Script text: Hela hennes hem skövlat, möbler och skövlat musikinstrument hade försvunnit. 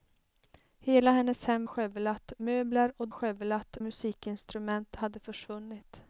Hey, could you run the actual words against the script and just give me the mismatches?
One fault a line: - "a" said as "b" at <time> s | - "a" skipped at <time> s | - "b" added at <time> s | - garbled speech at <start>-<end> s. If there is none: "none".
none